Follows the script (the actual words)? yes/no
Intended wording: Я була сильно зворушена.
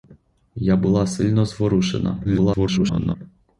no